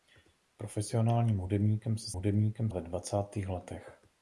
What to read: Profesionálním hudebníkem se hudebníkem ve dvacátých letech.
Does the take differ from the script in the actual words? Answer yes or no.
no